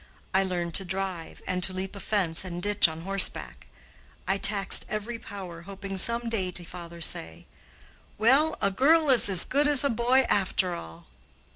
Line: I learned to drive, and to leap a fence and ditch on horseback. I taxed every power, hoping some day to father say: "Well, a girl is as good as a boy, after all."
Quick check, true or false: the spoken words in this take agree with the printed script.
true